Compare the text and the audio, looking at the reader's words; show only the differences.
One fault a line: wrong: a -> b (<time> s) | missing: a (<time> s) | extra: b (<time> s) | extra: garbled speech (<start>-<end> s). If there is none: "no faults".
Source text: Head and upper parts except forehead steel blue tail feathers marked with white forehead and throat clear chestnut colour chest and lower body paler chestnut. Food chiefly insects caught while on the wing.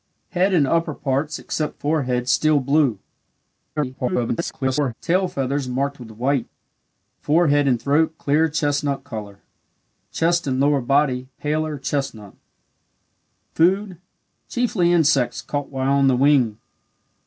extra: garbled speech (3.8-4.9 s)